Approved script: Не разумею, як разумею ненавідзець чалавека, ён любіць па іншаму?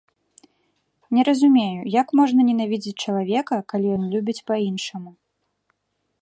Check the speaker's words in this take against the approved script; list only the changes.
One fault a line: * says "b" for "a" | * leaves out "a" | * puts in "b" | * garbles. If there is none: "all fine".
* says "можна" for "разумею"
* puts in "калі"